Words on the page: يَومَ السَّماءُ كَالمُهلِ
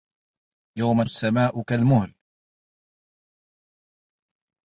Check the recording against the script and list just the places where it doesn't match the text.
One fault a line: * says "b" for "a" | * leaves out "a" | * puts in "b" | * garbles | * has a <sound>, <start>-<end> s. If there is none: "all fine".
all fine